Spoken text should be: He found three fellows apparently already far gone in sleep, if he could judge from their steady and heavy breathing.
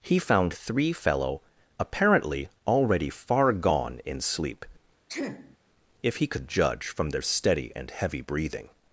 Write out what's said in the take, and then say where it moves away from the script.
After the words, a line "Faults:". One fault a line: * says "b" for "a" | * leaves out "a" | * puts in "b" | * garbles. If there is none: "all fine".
He found three fellow apparently already far gone in sleep, if he could judge from their steady and heavy breathing.
Faults:
* says "fellow" for "fellows"